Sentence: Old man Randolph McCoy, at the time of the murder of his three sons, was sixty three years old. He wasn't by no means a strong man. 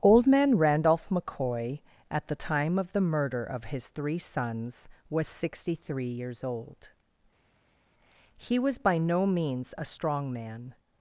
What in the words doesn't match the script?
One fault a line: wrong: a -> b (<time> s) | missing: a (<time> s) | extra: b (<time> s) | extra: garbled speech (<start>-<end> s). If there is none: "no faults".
wrong: wasn't -> was (8.6 s)